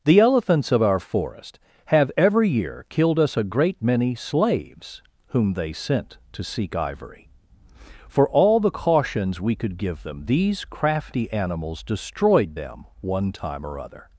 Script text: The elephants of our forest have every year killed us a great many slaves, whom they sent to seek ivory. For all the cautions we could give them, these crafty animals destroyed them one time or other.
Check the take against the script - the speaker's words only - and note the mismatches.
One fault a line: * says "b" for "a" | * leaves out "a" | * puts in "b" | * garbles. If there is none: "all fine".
all fine